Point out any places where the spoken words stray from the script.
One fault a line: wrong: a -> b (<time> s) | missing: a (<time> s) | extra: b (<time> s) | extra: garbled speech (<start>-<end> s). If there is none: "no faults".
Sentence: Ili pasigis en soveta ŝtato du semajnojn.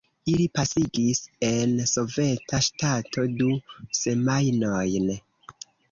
no faults